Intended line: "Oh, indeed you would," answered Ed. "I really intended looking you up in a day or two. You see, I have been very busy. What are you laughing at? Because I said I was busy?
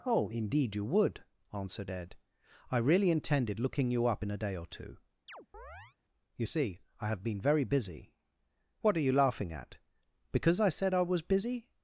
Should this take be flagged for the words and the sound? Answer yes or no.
yes